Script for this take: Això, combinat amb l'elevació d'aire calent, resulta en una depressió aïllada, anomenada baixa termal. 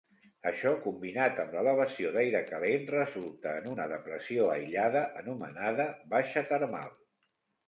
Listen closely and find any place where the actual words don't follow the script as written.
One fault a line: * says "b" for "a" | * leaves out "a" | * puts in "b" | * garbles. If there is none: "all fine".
all fine